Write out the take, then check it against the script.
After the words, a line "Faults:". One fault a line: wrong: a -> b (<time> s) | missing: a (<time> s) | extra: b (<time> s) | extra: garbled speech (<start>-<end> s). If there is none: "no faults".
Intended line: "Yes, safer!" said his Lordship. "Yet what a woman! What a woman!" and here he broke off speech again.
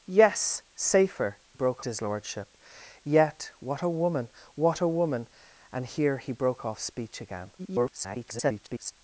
"Yes, safer!" broke his Lordship. "Yet what a woman! What a woman!" and here he broke off speech again. [garbled]
Faults:
wrong: said -> broke (1.5 s)
extra: garbled speech (7.6-8.9 s)